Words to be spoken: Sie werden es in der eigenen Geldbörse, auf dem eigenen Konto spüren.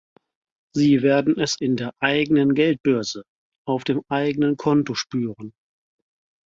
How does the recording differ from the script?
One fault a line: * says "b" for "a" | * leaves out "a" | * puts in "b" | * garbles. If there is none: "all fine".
all fine